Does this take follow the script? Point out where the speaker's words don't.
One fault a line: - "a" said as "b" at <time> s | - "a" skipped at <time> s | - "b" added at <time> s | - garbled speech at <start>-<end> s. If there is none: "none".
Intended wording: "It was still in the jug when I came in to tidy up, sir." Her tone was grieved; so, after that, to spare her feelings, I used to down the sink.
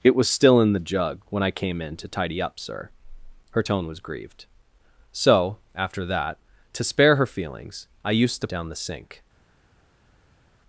none